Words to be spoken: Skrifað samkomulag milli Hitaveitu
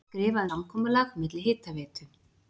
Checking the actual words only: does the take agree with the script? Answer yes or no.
yes